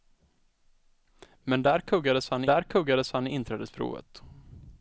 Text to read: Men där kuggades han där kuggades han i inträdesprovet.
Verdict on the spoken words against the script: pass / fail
pass